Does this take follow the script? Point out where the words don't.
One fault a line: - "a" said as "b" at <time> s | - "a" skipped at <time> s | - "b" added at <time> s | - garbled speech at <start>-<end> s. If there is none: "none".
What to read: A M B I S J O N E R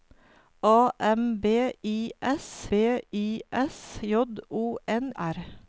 - "B I S" added at 2.7 s
- "E" skipped at 5.1 s